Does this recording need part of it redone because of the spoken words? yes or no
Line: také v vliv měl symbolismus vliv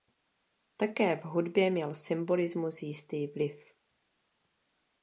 yes